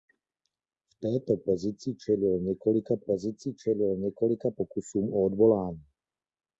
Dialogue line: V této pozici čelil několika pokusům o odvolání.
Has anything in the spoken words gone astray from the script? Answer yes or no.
yes